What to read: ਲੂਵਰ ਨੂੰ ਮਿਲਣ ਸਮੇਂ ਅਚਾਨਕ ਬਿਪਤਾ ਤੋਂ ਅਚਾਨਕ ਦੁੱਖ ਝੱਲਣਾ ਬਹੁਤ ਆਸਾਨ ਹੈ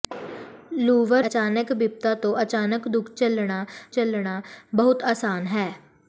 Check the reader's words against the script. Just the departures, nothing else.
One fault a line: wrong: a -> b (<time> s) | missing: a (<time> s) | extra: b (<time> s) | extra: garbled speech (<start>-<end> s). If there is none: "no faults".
missing: ਨੂੰ ਮਿਲਣ ਸਮੇਂ (1.2 s)
extra: ਝੱਲਣਾ (3.9 s)